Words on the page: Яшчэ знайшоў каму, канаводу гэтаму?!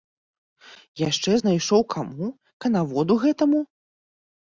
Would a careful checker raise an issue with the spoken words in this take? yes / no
no